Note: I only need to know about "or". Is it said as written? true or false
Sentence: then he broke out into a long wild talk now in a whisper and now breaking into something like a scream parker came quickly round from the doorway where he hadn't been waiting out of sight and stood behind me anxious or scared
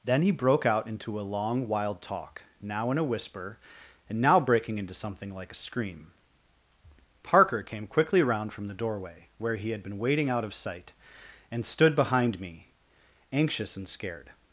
false